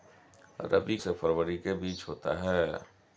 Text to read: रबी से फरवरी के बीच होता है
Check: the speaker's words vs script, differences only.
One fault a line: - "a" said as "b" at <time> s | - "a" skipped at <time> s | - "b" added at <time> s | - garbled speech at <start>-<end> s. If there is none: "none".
none